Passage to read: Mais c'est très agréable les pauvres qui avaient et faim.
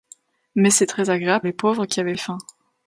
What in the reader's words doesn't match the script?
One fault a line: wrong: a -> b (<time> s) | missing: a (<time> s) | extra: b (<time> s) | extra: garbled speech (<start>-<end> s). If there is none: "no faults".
no faults